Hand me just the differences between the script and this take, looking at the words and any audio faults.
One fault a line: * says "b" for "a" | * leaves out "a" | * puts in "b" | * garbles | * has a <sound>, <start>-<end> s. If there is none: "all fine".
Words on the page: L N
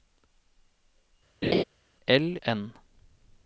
* has a laugh, 1.4-1.6 s